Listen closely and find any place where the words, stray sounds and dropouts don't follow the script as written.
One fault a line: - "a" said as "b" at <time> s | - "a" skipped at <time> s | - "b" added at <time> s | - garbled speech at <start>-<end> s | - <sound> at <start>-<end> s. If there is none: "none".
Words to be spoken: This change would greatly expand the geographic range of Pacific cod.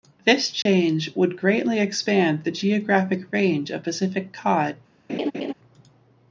- dropout at 0.6-0.7 s
- laugh at 5.1-5.5 s